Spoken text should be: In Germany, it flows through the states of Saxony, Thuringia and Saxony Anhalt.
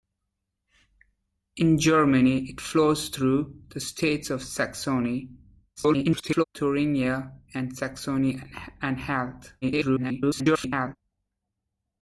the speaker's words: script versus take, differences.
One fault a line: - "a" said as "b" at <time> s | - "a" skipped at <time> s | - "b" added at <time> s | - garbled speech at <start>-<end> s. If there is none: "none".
- garbled speech at 5.8-6.4 s
- garbled speech at 9.6-11.0 s